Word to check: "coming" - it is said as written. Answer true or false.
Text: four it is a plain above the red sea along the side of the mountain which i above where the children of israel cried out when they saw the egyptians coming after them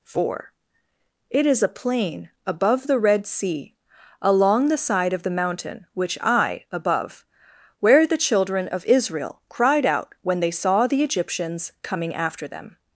true